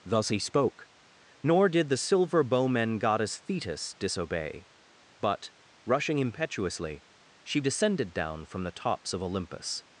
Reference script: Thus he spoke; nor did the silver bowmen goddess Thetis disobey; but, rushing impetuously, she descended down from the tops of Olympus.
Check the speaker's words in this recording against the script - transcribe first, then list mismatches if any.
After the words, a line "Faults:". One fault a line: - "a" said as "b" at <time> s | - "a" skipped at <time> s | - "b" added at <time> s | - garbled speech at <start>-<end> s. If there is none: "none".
Thus he spoke; nor did the silver bowmen goddess Thetis disobey; but, rushing impetuously, she descended down from the tops of Olympus.
Faults:
none